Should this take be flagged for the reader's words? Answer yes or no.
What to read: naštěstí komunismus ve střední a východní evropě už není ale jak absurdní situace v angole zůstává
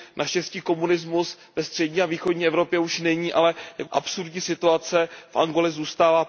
no